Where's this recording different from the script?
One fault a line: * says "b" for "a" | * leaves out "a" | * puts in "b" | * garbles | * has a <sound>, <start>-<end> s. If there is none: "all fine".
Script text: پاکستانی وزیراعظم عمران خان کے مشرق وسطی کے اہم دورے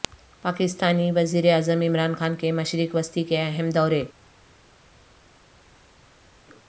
all fine